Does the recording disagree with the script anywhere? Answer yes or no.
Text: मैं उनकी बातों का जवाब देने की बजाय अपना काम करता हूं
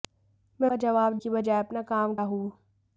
yes